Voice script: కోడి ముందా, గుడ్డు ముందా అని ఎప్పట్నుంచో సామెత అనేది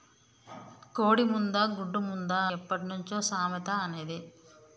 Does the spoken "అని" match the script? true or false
false